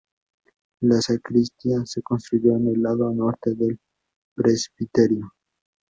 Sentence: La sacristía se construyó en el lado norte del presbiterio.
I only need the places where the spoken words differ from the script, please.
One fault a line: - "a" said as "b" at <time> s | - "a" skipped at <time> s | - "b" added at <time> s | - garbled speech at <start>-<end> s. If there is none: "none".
none